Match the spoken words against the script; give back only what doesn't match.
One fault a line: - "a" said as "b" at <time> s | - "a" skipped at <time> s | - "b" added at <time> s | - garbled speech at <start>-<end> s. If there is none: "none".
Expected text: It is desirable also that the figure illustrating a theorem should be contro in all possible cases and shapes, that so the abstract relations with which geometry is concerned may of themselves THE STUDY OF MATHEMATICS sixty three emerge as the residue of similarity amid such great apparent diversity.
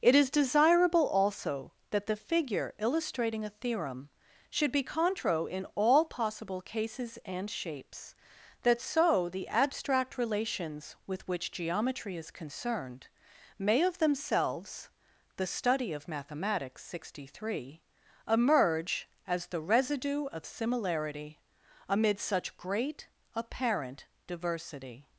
none